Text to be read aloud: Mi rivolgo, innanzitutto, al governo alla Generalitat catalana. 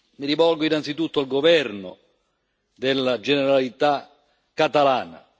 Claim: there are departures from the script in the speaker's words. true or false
true